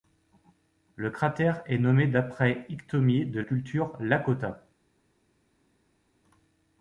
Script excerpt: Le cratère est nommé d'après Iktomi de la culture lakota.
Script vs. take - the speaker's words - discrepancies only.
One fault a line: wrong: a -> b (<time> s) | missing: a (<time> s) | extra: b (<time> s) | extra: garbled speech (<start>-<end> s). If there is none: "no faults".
missing: la (3.4 s)